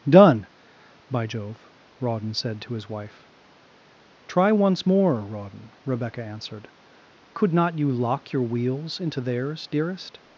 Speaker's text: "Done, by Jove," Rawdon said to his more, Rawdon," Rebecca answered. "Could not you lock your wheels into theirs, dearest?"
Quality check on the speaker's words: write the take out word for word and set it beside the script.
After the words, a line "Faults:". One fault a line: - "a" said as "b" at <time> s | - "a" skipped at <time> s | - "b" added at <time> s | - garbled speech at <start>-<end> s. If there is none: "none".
"Done, by Jove," Rawdon said to his wife. "Try once more, Rawdon," Rebecca answered. "Could not you lock your wheels into theirs, dearest?"
Faults:
- "wife Try once" added at 2.9 s